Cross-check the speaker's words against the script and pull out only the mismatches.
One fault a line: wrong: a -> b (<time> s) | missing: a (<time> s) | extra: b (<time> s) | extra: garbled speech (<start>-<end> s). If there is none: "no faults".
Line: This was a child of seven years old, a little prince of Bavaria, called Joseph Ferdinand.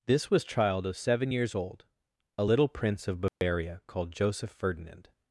missing: a (0.4 s)